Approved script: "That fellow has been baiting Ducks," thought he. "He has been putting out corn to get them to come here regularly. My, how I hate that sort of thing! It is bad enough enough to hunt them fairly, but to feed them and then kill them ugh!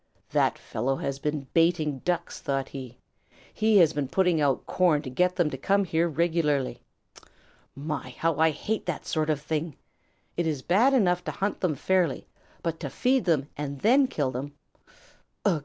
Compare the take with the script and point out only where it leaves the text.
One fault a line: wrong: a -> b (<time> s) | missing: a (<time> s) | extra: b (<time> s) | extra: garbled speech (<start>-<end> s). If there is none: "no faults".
missing: enough (11.2 s)